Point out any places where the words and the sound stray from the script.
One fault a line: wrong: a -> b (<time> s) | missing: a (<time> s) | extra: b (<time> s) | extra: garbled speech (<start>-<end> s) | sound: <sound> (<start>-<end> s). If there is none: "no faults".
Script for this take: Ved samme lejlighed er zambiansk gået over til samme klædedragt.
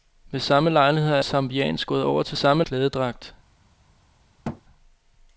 sound: thud (4.4-4.6 s)